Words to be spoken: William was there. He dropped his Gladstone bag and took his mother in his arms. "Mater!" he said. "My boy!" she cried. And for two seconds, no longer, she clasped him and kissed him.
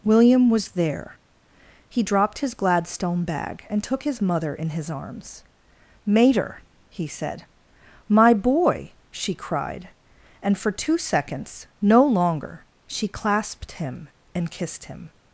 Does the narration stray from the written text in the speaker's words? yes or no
no